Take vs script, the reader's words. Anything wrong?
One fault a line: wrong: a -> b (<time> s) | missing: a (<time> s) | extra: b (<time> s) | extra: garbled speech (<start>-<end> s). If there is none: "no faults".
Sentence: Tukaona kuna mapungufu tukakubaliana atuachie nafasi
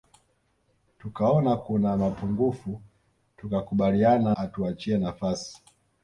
no faults